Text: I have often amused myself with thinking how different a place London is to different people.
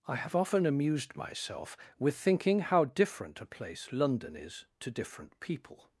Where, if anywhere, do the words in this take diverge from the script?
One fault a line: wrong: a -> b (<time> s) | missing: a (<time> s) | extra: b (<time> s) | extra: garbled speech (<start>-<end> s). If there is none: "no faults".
no faults